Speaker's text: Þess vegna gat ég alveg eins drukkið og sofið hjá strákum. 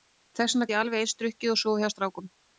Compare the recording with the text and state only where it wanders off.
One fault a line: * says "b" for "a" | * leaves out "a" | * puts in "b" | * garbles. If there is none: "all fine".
* leaves out "gat"